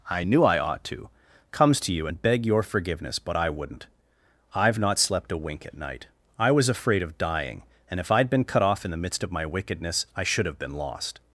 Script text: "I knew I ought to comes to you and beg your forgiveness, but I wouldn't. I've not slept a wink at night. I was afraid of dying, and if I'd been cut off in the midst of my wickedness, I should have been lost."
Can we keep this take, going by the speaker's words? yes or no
yes